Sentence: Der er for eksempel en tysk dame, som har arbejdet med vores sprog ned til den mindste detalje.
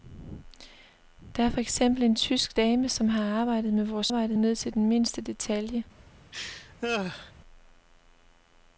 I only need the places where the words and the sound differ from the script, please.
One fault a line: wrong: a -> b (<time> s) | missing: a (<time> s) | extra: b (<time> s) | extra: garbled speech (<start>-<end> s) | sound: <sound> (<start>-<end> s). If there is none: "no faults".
wrong: sprog -> arbejdet (4.1 s)
sound: laugh (6.3-7.3 s)